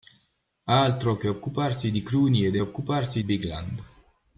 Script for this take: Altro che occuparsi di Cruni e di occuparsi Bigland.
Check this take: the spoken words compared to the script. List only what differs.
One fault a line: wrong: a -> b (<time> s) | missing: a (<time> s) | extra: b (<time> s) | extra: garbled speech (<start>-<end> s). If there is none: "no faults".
no faults